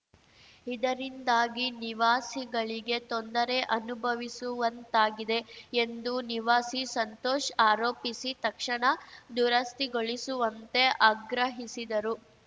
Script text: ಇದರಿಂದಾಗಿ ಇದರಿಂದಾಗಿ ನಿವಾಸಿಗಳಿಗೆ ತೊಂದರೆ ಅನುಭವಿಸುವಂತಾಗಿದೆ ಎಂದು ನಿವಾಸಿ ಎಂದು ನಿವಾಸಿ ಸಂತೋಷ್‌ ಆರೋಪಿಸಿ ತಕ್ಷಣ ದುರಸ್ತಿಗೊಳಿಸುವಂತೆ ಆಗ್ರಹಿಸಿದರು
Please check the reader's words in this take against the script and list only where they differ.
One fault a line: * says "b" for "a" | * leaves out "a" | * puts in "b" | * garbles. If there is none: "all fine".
* leaves out "ಇದರಿಂದಾಗಿ"
* leaves out "ಎಂದು ನಿವಾಸಿ"